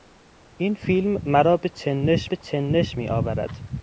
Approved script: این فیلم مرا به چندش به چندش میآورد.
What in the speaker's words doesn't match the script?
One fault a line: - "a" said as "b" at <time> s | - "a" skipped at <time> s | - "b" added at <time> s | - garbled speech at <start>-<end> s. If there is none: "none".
none